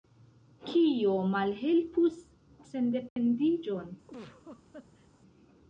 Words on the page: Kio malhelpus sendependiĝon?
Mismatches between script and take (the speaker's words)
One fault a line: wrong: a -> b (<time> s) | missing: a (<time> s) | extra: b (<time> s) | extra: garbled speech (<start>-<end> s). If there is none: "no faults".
no faults